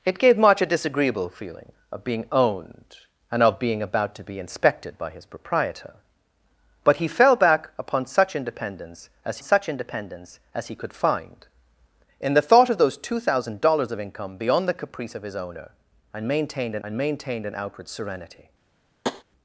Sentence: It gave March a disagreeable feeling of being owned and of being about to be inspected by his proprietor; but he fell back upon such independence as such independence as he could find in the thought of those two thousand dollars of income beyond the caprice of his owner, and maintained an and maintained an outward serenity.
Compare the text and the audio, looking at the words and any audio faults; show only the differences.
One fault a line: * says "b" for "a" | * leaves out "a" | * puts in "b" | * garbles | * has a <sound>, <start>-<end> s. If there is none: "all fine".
* has a tap, 19.0-19.2 s